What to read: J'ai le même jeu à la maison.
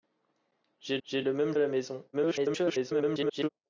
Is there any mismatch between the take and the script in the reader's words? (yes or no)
yes